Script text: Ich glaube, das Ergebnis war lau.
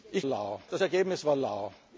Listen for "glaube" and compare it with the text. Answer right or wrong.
wrong